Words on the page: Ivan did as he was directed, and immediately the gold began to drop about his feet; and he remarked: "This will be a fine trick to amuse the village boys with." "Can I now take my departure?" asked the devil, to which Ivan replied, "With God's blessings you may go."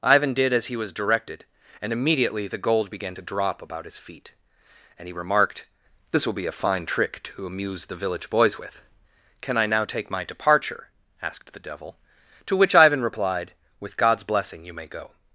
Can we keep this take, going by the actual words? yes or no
no